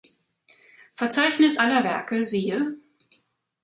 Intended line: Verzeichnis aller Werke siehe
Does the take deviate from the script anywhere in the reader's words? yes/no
no